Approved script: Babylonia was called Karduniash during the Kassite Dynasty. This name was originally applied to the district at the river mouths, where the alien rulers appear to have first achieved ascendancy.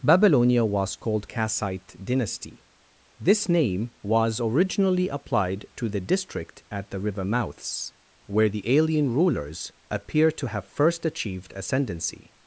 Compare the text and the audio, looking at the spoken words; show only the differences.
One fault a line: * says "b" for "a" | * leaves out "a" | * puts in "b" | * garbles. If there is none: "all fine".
* leaves out "Karduniash during the"